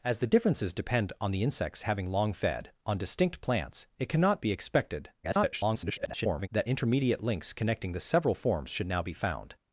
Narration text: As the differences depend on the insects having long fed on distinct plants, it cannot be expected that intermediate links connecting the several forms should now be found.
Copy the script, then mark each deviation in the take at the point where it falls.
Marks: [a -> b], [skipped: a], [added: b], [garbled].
As the differences depend on the insects having long fed on distinct plants, it cannot be expected [garbled] that intermediate links connecting the several forms should now be found.